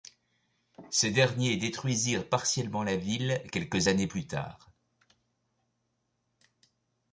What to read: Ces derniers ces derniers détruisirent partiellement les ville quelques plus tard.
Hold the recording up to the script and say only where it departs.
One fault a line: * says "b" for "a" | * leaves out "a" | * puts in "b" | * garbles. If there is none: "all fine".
* leaves out "ces derniers"
* says "la" for "les"
* puts in "années"